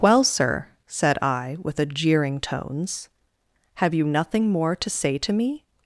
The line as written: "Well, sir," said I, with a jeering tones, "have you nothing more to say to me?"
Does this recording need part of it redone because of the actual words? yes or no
no